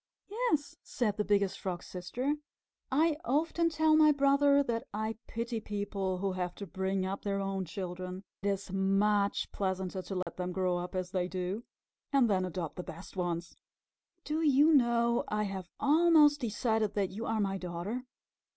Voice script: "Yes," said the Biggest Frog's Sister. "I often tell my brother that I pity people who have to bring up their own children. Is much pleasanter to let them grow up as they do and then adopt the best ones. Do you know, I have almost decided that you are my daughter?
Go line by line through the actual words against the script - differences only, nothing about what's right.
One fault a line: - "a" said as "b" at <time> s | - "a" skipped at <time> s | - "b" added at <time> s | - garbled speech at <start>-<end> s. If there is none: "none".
none